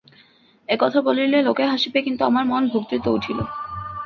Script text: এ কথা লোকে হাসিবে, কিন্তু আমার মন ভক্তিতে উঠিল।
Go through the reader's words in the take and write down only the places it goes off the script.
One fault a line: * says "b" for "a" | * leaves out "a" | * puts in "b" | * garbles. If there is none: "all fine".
* puts in "বলিলে"